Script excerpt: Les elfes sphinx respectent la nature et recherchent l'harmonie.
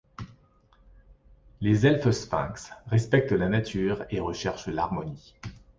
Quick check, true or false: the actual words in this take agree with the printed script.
true